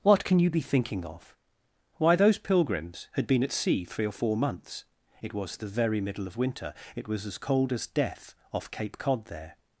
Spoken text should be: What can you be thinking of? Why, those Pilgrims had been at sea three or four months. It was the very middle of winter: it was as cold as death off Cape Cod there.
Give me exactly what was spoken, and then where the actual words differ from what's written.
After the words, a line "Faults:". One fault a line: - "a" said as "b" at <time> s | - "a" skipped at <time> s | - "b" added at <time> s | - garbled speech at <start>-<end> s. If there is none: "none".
What can you be thinking of? Why, those Pilgrims had been at sea three or four months. It was the very middle of winter: it was as cold as death off Cape Cod there.
Faults:
none